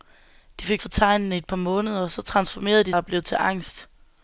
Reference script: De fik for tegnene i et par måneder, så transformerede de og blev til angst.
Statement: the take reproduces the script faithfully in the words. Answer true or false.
true